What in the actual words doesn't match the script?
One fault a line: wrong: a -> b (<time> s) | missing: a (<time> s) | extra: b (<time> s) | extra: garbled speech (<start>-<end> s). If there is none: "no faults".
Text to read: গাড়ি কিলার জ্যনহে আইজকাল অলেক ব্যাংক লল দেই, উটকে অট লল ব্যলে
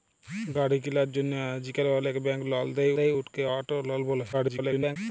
extra: দেই (3.0 s)
extra: garbled speech (4.3-5.0 s)